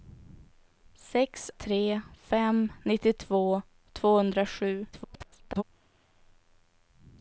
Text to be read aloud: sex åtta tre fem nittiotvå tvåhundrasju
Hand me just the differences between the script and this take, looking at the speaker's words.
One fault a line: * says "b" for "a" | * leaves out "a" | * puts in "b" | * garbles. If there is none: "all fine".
* leaves out "åtta"
* garbles